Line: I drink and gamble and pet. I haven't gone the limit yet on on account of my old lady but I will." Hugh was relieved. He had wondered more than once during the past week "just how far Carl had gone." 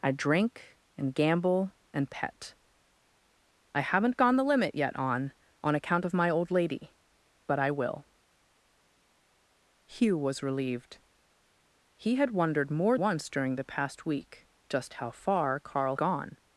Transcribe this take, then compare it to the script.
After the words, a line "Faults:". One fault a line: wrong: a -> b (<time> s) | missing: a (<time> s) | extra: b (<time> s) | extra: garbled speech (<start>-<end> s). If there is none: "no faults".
I drink and gamble and pet. I haven't gone the limit yet on on account of my old lady but I will." Hugh was relieved. He had wondered more once during the past week "just how far Carl gone."
Faults:
missing: than (13.0 s)
missing: had (16.0 s)